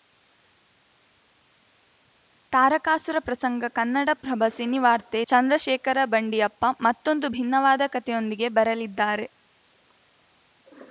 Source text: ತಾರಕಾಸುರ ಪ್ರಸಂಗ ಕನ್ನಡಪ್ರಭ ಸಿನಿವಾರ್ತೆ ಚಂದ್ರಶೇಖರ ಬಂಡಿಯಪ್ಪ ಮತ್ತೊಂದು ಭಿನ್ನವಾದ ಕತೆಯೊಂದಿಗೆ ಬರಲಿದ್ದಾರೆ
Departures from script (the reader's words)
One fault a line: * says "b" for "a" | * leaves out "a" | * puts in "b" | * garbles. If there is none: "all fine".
all fine